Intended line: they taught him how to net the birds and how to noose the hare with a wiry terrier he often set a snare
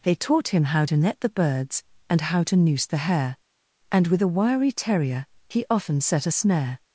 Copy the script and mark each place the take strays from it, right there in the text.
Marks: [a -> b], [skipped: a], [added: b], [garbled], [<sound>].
they taught him how to net the birds and how to noose the hare [added: and] with a wiry terrier he often set a snare